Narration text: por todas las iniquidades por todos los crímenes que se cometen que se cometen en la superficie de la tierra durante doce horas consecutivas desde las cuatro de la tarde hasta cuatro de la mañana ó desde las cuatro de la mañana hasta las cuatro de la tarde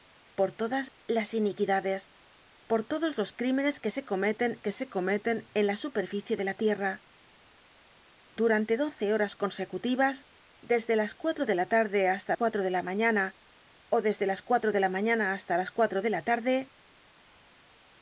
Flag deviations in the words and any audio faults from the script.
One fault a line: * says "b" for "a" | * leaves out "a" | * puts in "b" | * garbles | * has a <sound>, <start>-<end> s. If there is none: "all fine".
all fine